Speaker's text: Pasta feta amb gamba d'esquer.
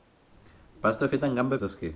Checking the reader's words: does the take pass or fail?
pass